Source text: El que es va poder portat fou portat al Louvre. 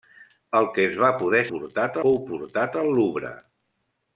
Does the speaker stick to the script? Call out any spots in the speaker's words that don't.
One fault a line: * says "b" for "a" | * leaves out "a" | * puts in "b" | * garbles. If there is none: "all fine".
all fine